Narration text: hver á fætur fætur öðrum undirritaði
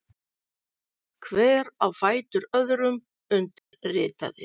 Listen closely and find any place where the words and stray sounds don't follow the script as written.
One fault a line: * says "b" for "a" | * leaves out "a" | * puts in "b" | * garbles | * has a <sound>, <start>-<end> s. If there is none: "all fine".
* leaves out "fætur"
* has a dropout, 3.6-3.7 s